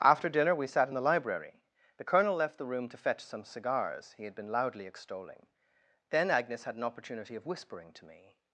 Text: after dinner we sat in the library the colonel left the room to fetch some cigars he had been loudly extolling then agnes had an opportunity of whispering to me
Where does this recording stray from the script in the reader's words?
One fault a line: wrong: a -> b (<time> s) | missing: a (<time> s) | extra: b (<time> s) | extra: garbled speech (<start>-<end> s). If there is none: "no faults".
no faults